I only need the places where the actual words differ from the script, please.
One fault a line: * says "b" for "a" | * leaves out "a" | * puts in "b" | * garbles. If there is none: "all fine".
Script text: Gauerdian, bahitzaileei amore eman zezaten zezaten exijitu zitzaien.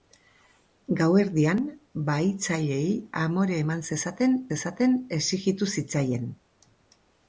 all fine